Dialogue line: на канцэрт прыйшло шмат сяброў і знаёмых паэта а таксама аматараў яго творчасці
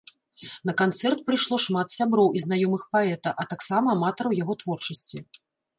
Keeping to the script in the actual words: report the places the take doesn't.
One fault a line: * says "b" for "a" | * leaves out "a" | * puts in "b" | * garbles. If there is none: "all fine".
all fine